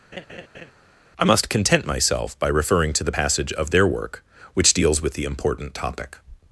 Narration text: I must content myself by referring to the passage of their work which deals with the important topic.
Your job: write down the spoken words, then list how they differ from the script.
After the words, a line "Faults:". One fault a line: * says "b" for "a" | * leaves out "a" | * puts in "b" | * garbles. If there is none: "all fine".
I must content myself by referring to the passage of their work which deals with the important topic.
Faults:
all fine